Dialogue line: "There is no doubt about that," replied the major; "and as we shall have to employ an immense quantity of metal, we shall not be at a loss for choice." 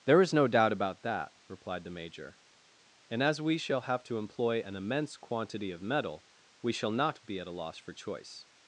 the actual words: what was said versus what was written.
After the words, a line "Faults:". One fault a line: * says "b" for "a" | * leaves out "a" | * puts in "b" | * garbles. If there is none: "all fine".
"There is no doubt about that," replied the major; "and as we shall have to employ an immense quantity of metal, we shall not be at a loss for choice."
Faults:
all fine